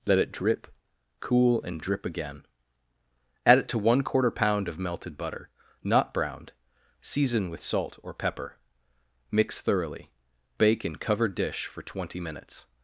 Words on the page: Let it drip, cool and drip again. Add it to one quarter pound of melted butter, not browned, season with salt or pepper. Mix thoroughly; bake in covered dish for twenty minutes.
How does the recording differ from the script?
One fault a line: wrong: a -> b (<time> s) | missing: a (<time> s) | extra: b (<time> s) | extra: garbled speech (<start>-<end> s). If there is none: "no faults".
no faults